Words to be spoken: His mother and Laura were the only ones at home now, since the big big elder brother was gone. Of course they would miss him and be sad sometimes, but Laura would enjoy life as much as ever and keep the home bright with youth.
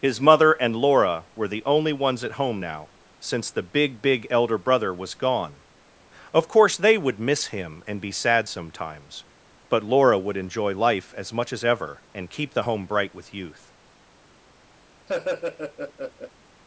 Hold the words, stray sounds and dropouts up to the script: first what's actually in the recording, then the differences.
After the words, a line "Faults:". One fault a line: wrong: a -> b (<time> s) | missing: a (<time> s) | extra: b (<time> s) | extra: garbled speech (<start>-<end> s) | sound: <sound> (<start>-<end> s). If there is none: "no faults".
His mother and Laura were the only ones at home now, since the big big elder brother was gone. Of course they would miss him and be sad sometimes, but Laura would enjoy life as much as ever and keep the home bright with youth.
Faults:
sound: laugh (15.1-16.3 s)